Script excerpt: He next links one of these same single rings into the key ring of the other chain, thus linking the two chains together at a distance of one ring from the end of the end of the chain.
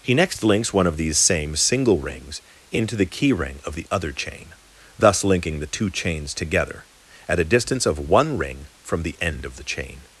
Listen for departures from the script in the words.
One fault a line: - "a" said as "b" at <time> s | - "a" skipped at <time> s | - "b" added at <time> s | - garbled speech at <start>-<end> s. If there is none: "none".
- "end of the" skipped at 9.6 s